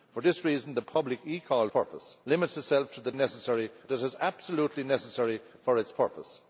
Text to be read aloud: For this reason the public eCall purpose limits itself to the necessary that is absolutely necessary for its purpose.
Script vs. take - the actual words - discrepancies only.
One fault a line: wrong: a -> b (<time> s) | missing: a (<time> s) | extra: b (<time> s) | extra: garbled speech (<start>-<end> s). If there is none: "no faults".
no faults